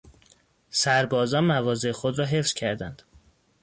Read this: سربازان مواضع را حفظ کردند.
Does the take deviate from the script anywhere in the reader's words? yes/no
yes